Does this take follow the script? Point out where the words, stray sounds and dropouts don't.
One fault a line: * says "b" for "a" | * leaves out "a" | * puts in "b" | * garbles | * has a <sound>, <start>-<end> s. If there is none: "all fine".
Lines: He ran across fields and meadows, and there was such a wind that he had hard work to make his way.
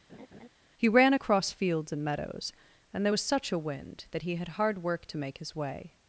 * has a laugh, 0.1-0.5 s